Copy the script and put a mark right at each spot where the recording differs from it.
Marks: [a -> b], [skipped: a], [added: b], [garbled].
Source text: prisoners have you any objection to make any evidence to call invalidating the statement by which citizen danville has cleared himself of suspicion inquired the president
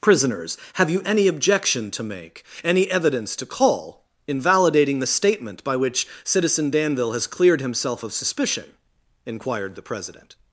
prisoners have you any objection to make any evidence to call invalidating the statement by which citizen danville has cleared himself of suspicion inquired the president